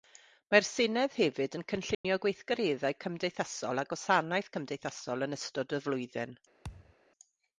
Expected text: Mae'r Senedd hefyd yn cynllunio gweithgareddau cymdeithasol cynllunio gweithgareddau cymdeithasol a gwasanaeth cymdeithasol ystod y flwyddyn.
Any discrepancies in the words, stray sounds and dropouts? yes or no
yes